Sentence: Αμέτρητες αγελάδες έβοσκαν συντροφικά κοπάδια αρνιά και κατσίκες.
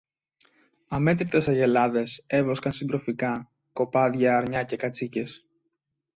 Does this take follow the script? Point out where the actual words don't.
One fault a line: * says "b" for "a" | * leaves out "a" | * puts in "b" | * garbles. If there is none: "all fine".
all fine